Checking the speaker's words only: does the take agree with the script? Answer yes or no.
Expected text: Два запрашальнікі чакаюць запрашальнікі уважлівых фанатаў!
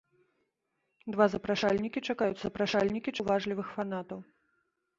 yes